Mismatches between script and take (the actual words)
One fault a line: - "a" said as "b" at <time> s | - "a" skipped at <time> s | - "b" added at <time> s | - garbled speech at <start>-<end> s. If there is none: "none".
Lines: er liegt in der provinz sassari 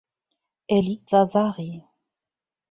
- "in der provinz" skipped at 1.1 s